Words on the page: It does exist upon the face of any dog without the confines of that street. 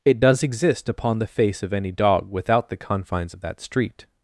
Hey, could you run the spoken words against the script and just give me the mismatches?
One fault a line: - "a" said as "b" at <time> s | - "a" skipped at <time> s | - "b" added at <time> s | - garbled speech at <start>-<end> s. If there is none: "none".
none